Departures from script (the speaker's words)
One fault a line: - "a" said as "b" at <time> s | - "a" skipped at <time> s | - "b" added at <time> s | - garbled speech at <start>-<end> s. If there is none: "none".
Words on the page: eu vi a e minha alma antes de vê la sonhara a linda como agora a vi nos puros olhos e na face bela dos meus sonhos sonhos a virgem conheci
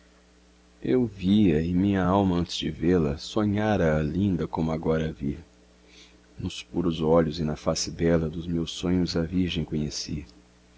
- "sonhos" skipped at 9.1 s